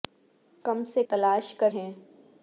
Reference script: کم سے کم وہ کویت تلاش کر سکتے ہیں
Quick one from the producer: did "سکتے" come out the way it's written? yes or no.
no